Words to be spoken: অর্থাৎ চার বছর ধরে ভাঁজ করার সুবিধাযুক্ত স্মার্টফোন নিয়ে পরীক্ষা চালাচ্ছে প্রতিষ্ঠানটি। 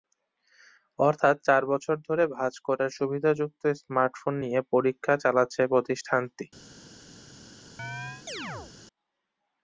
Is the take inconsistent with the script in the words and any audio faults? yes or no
yes